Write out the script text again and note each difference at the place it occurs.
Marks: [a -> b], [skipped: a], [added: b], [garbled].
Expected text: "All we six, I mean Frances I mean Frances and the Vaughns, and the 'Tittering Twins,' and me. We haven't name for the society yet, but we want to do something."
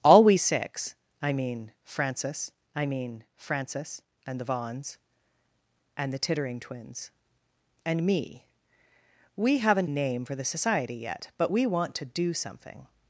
"All we six, I mean Frances I mean Frances and the Vaughns, and the 'Tittering Twins,' and me. We haven't name for the society yet, but we want to do something."